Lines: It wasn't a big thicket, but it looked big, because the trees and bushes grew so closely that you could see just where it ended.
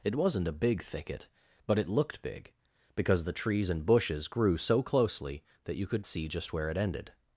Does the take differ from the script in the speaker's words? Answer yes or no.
no